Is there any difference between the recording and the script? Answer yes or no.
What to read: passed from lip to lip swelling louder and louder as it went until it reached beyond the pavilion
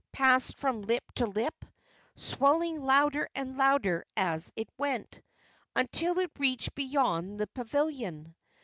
no